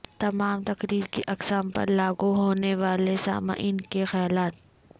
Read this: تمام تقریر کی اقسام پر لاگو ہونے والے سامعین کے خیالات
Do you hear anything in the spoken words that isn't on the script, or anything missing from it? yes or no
no